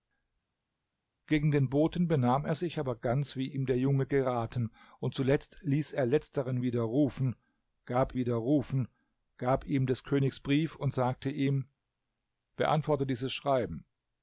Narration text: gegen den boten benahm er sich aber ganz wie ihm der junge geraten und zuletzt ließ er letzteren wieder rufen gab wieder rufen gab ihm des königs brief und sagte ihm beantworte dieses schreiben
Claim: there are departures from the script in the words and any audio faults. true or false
false